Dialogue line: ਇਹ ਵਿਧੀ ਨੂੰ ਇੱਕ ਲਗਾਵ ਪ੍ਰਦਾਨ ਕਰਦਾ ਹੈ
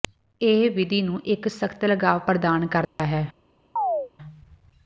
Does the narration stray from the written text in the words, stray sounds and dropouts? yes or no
yes